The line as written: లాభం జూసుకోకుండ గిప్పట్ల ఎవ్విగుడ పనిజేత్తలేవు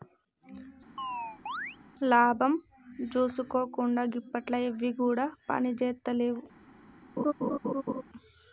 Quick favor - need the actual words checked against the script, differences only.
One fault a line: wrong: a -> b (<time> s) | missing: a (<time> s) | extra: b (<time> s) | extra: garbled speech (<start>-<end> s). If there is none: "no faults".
no faults